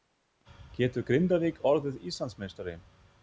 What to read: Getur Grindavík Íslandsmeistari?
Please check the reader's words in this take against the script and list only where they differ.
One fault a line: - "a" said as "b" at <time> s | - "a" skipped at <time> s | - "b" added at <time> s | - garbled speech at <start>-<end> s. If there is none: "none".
- "orðið" added at 1.7 s